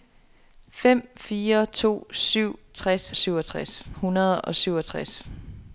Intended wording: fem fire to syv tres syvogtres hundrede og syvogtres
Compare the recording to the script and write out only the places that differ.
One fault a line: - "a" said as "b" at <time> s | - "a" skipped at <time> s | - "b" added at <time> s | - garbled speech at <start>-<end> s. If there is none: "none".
none